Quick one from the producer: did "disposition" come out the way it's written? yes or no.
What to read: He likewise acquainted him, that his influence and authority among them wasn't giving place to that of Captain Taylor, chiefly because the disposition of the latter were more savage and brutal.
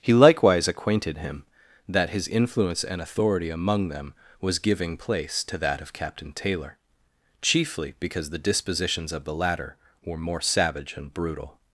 no